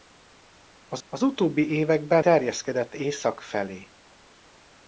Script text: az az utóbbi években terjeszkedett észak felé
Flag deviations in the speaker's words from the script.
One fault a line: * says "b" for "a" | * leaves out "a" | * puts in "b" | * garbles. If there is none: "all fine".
all fine